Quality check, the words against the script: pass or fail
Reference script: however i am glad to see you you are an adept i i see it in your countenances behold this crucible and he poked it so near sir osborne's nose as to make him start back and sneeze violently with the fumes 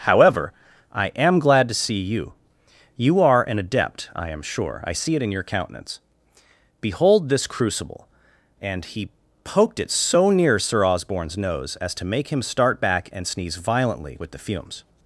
fail